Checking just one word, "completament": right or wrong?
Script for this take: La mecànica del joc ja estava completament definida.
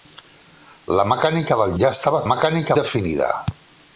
wrong